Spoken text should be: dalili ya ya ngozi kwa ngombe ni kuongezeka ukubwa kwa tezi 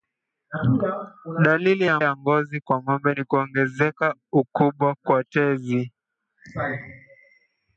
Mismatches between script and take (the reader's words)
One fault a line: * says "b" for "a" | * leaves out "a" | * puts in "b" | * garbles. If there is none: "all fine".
all fine